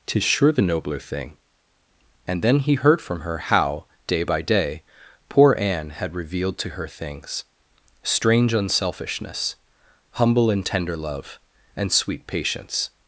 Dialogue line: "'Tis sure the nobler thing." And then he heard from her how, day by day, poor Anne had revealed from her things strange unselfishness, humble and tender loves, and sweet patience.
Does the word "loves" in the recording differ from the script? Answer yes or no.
yes